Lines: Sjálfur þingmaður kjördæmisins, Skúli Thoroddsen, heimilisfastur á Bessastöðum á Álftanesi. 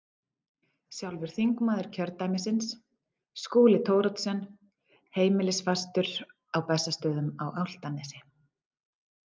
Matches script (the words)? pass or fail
pass